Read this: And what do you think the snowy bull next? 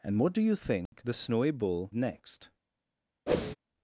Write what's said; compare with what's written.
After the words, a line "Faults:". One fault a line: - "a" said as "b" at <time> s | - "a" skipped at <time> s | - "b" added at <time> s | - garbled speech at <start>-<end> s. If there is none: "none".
And what do you think the snowy bull next?
Faults:
none